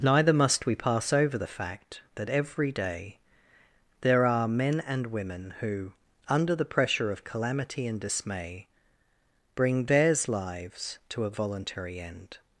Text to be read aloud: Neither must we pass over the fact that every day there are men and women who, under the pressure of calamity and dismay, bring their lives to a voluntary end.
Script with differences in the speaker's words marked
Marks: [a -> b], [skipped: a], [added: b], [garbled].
Neither must we pass over the fact that every day there are men and women who, under the pressure of calamity and dismay, bring [their -> theirs] lives to a voluntary end.